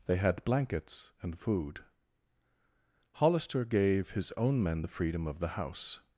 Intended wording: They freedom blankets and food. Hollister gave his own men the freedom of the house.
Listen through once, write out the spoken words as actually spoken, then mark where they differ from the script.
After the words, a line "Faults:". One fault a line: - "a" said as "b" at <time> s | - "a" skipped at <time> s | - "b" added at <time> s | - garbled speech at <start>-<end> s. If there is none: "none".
They had blankets and food. Hollister gave his own men the freedom of the house.
Faults:
- "freedom" said as "had" at 0.2 s